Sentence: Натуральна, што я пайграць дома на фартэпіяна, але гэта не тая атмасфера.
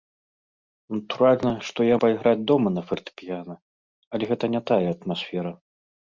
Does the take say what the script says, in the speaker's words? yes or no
yes